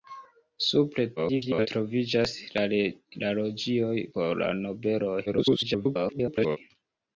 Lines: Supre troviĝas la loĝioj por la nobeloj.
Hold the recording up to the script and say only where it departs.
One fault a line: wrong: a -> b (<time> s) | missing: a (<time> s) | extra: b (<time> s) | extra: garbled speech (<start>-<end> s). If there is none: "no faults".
extra: garbled speech (1.2-1.7 s)
extra: garbled speech (5.3-6.6 s)